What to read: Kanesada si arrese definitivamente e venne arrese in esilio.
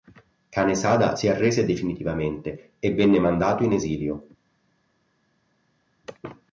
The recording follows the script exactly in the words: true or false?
false